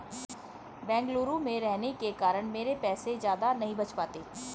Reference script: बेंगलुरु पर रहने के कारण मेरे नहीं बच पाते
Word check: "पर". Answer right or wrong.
wrong